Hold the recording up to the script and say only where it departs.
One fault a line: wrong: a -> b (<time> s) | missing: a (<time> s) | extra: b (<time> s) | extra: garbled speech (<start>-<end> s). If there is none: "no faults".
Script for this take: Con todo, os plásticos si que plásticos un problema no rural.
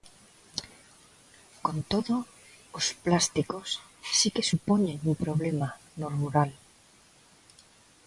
wrong: plásticos -> supoñen (4.5 s)